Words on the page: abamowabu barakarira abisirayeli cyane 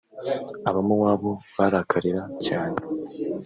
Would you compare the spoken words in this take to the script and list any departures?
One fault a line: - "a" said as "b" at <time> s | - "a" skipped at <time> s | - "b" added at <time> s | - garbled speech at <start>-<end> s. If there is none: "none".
- "abisirayeli" skipped at 2.2 s